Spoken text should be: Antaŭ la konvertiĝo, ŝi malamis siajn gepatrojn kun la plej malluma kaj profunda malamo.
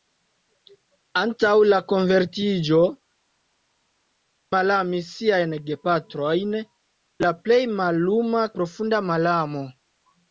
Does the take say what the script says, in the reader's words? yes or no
no